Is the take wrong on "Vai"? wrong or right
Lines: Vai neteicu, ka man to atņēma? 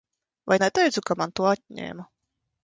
right